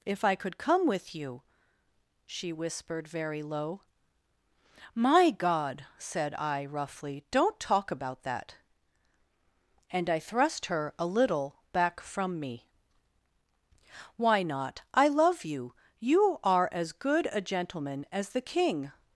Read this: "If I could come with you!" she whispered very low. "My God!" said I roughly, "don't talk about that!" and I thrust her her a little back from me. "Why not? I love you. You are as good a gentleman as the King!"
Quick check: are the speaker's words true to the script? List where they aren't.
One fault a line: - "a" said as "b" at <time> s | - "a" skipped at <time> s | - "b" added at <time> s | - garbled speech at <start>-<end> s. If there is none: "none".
- "her" skipped at 10.9 s